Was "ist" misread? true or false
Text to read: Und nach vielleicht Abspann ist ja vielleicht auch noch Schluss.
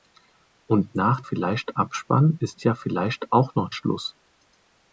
false